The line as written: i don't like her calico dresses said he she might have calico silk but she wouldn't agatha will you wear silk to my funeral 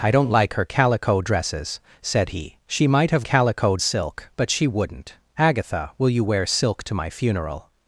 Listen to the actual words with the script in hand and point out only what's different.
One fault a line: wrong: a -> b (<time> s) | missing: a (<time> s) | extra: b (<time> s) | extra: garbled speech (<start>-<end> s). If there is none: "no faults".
no faults